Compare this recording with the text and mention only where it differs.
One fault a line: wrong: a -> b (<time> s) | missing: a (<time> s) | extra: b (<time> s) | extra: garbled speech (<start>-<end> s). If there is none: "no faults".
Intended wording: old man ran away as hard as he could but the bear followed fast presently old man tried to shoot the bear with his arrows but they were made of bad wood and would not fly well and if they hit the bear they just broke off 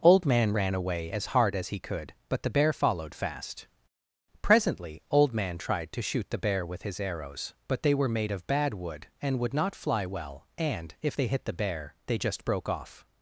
no faults